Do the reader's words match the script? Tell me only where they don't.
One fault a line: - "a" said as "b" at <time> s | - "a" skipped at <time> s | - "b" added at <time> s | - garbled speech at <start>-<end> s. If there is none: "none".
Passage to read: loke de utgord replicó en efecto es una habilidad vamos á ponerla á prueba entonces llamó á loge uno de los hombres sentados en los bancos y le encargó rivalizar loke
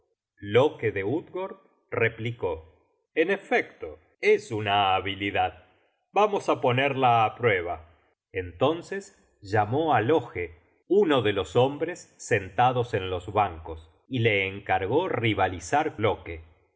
none